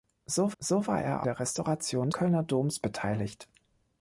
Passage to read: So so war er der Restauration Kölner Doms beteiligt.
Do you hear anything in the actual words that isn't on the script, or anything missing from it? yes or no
no